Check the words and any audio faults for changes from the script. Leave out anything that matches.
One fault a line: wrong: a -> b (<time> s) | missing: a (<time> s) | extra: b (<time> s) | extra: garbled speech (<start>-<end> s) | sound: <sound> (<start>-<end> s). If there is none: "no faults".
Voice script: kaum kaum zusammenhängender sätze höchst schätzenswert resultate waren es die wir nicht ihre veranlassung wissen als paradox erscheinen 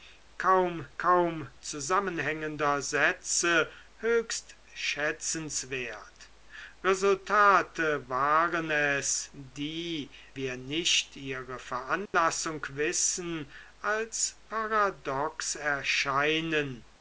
sound: dropout (12.1-12.1 s)